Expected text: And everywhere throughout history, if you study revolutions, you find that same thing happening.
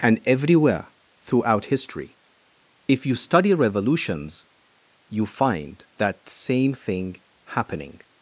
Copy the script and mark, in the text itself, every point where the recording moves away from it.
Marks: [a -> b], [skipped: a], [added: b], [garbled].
And everywhere throughout history, if you study revolutions, you find that same thing happening.